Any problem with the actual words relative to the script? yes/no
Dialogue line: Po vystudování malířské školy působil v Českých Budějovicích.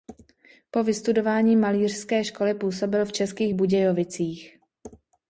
no